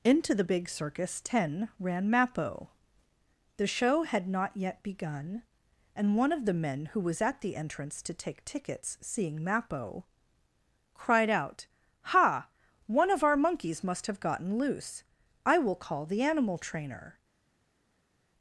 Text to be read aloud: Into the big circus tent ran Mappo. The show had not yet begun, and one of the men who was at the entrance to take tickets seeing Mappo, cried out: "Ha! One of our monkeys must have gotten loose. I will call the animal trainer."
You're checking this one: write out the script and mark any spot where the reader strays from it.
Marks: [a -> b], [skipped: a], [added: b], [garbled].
Into the big circus [tent -> ten] ran Mappo. The show had not yet begun, and one of the men who was at the entrance to take tickets seeing Mappo, cried out: "Ha! One of our monkeys must have gotten loose. I will call the animal trainer."